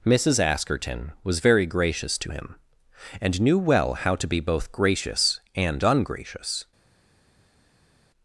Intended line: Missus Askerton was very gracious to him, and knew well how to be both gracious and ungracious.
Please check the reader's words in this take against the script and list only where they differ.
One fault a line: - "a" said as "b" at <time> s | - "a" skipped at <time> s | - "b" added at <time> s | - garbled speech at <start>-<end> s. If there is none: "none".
none